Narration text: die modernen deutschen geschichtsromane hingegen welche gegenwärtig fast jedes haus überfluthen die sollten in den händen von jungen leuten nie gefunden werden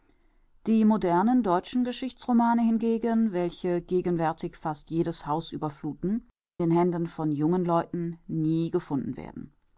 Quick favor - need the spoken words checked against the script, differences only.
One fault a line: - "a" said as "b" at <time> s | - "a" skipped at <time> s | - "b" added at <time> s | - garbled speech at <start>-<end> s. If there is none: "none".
- "die sollten in" skipped at 6.3 s